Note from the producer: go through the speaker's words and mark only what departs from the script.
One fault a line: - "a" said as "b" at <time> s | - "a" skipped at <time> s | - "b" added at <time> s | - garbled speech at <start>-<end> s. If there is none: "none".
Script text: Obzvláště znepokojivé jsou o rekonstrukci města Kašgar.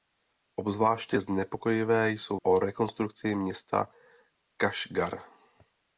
none